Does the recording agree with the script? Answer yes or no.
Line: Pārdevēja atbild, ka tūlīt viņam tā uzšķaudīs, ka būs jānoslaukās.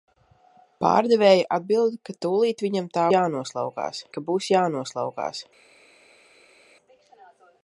no